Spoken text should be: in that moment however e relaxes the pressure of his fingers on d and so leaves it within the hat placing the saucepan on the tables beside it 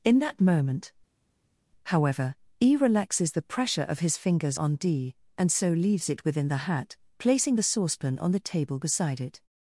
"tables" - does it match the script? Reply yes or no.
no